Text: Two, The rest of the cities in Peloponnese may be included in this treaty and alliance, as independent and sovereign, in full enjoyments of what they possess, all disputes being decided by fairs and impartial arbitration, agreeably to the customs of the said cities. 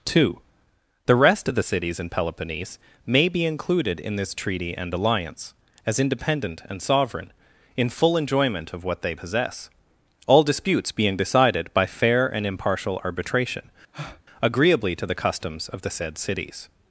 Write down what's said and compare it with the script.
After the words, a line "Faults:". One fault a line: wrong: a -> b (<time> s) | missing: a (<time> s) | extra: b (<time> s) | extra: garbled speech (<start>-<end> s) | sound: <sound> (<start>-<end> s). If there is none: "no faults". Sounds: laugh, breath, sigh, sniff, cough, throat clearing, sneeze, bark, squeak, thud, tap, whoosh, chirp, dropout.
Two, The rest of the cities in Peloponnese may be included in this treaty and alliance, as independent and sovereign, in full enjoyment of what they possess, all disputes being decided by fair and impartial arbitration, agreeably to the customs of the said cities.
Faults:
wrong: enjoyments -> enjoyment (8.2 s)
wrong: fairs -> fair (11.9 s)
sound: breath (13.9-14.2 s)